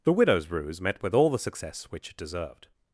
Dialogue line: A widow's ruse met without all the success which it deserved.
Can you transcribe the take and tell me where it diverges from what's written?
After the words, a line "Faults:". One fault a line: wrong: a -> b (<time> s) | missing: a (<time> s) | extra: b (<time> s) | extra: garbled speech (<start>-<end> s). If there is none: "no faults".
The widow's ruse met with all the success which it deserved.
Faults:
wrong: A -> The (0.0 s)
wrong: without -> with (1.0 s)